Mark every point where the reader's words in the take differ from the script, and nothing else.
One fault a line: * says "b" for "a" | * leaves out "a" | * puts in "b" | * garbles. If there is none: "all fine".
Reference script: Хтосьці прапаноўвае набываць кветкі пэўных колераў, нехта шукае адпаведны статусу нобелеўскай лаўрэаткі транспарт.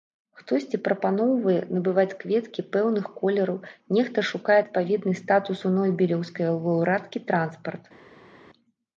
all fine